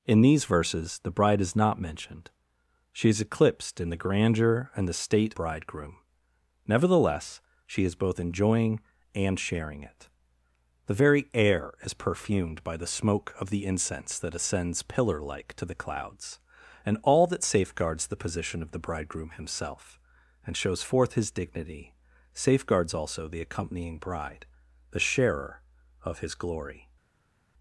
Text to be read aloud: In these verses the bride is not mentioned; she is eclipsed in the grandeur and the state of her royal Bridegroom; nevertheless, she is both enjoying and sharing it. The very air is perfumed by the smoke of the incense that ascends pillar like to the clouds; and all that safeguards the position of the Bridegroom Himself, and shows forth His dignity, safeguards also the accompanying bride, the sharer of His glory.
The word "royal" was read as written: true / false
false